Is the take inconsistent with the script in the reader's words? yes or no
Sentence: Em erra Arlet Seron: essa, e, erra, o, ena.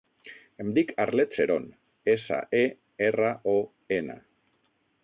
yes